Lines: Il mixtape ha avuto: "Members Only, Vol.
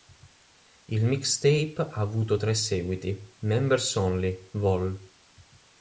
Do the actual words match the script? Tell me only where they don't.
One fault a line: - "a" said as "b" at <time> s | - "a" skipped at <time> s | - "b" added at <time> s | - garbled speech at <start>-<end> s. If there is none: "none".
- "tre seguiti" added at 2.4 s